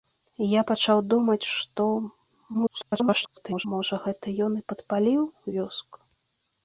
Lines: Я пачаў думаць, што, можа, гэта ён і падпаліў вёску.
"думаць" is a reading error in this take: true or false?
false